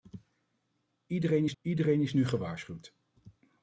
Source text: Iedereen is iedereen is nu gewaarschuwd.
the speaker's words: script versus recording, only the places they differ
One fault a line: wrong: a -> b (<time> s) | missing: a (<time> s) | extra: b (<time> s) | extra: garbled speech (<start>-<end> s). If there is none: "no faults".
no faults